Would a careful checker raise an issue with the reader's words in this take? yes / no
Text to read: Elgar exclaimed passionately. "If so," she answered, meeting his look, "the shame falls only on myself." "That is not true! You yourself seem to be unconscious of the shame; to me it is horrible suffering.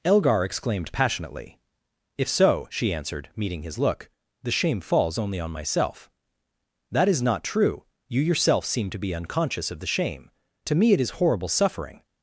no